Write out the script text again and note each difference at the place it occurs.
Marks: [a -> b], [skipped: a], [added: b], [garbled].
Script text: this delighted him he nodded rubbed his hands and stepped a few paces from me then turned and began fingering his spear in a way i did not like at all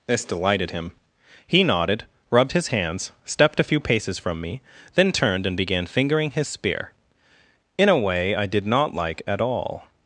this delighted him he nodded rubbed his hands [skipped: and] stepped a few paces from me then turned and began fingering his spear in a way i did not like at all